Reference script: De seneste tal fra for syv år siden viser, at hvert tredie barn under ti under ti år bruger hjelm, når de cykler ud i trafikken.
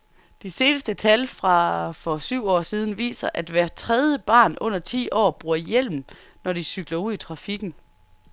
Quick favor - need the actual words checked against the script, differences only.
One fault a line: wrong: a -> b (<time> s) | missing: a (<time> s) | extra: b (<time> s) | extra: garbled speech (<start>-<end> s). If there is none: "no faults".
missing: under ti (5.1 s)